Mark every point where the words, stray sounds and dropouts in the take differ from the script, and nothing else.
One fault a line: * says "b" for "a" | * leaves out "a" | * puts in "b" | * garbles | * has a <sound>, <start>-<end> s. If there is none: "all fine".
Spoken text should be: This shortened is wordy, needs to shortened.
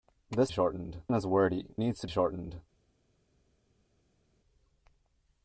all fine